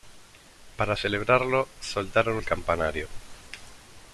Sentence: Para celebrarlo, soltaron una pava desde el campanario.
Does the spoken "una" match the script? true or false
false